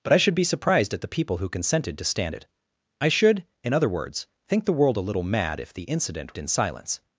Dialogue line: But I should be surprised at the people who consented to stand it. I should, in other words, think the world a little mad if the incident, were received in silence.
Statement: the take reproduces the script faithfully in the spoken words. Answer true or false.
false